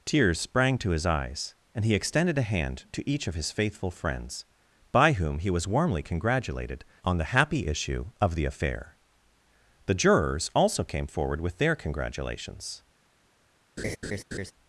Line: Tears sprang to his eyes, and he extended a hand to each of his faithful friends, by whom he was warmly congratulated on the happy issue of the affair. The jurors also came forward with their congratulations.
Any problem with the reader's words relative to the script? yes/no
no